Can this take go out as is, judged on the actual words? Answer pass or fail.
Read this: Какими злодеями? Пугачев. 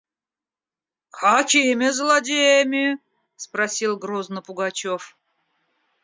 fail